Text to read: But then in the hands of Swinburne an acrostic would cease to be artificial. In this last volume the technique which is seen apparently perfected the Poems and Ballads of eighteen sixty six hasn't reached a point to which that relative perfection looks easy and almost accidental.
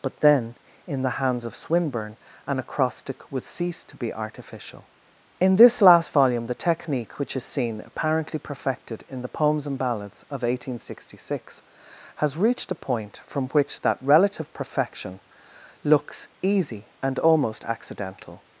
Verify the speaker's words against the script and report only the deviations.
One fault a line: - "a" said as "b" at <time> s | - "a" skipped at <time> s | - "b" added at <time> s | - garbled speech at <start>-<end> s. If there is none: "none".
- "in" added at 9.1 s
- "hasn't" said as "has" at 12.2 s
- "to" said as "from" at 13.3 s